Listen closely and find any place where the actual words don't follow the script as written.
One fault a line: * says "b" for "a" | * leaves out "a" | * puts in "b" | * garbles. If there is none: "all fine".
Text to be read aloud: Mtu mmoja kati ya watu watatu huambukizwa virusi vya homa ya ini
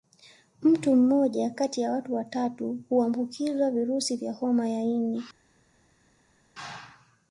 all fine